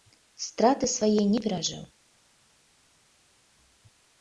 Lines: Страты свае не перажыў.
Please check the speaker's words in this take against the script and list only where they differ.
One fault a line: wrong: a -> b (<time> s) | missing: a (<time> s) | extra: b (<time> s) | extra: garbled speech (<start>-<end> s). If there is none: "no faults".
no faults